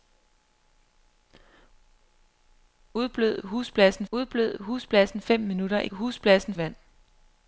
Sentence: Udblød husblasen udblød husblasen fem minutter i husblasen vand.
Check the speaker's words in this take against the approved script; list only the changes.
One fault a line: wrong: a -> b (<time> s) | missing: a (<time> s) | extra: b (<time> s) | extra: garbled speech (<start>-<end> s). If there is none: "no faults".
no faults